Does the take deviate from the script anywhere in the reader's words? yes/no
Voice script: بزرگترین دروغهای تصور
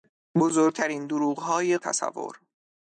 no